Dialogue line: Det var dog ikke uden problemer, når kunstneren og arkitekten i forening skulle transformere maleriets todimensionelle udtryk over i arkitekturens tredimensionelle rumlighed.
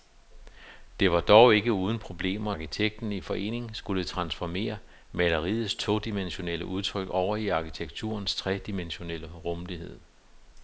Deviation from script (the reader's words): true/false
true